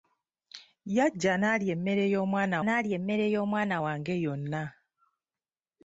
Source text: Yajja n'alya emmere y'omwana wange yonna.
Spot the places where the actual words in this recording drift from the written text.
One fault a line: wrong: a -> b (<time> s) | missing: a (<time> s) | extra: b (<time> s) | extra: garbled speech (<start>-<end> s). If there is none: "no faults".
extra: n'alya emmere y'omwana (2.6 s)